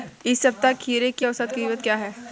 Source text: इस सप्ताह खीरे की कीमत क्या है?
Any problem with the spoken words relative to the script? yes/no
yes